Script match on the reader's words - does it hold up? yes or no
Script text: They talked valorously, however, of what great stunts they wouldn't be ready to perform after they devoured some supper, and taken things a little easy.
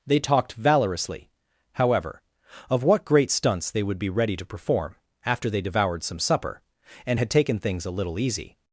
no